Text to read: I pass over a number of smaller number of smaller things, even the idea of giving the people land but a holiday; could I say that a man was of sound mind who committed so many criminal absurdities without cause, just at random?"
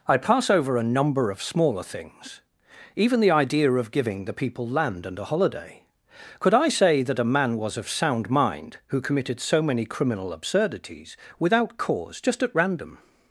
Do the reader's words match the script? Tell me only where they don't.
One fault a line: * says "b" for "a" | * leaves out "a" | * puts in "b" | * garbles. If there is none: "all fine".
* leaves out "number of smaller"
* says "and" for "but"